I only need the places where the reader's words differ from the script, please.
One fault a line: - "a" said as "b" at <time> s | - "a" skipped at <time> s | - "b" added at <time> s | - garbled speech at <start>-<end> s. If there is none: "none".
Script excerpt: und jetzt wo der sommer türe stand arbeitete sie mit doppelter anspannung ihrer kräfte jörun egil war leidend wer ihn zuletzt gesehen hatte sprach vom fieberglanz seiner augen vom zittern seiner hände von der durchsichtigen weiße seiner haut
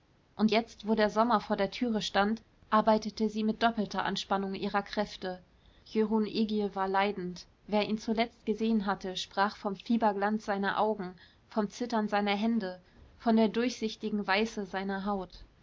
- "vor der" added at 1.4 s